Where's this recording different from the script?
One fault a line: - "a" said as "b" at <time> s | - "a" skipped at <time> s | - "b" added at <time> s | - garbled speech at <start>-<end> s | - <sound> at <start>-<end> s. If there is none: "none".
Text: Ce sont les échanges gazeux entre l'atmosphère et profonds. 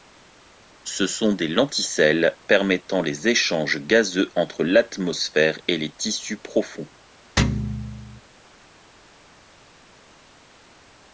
- "des lenticelles permettant" added at 1.3 s
- "les tissus" added at 5.8 s
- thud at 7.4-8.2 s